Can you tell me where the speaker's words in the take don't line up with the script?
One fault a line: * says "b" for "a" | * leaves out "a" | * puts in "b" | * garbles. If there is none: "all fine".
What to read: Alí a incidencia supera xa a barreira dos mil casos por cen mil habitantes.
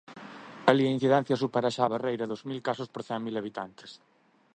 all fine